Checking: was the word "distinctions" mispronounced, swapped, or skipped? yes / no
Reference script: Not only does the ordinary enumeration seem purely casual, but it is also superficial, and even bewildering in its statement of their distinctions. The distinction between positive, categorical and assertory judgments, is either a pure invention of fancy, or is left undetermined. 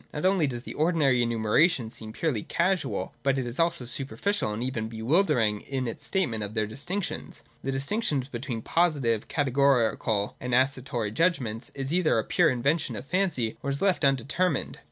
no